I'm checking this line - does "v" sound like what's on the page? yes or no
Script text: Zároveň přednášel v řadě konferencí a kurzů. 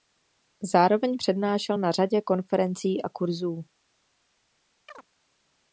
no